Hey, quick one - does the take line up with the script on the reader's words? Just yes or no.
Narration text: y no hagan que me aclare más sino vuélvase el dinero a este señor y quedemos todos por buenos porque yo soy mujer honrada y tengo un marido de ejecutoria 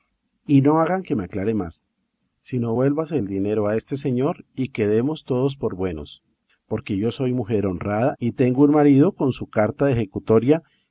no